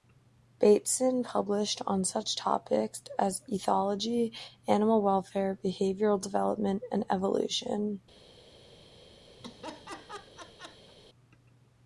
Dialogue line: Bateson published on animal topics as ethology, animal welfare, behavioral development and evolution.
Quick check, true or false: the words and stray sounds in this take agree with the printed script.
false